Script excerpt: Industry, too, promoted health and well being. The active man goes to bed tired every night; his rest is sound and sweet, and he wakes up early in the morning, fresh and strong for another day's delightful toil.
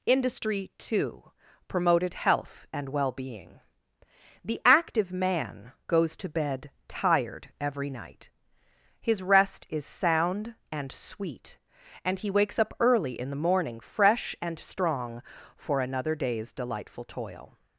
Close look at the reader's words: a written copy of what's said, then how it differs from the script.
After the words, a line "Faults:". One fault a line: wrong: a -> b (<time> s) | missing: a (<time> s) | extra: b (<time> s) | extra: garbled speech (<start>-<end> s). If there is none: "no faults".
Industry, too, promoted health and well being. The active man goes to bed tired every night; his rest is sound and sweet, and he wakes up early in the morning, fresh and strong for another day's delightful toil.
Faults:
no faults